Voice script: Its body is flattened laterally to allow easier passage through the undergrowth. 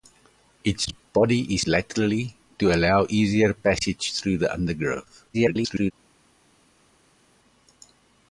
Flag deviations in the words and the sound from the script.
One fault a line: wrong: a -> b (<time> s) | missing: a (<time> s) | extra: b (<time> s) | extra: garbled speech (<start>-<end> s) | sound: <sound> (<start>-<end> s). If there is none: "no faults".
missing: flattened (1.6 s)
extra: garbled speech (5.3-5.9 s)